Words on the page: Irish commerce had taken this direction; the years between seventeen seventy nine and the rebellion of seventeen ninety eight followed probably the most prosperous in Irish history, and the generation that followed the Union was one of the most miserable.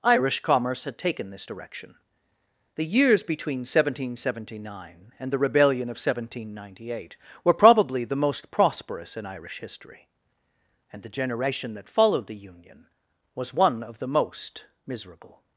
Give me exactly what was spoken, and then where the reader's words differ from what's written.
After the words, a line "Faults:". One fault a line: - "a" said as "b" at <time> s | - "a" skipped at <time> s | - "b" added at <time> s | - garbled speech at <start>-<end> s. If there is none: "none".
Irish commerce had taken this direction; the years between seventeen seventy nine and the rebellion of seventeen ninety eight were probably the most prosperous in Irish history, and the generation that followed the Union was one of the most miserable.
Faults:
- "followed" said as "were" at 7.4 s